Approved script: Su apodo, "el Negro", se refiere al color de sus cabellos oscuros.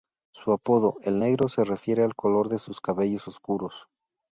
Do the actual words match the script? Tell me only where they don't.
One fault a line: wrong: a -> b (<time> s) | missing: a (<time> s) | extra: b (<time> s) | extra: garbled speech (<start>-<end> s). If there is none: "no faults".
no faults